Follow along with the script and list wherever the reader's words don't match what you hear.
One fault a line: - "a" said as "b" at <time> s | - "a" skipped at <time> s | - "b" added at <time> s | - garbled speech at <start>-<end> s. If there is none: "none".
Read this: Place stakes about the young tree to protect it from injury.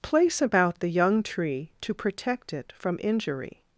- "stakes" skipped at 0.4 s